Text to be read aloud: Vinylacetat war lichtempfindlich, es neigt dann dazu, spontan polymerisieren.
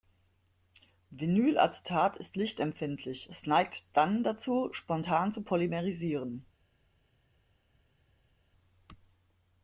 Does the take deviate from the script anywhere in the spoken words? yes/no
yes